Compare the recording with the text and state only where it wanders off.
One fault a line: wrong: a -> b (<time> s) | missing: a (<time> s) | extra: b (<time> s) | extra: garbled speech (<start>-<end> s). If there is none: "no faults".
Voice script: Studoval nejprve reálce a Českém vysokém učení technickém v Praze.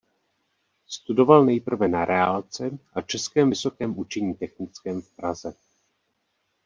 extra: na (1.8 s)